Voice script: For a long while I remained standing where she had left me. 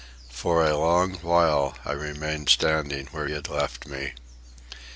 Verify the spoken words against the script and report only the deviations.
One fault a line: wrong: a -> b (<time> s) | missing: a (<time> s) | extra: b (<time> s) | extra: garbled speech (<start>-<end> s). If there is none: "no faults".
missing: she (3.3 s)